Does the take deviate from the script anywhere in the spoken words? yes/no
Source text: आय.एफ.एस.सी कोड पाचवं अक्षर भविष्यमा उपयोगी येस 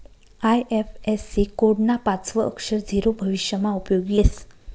yes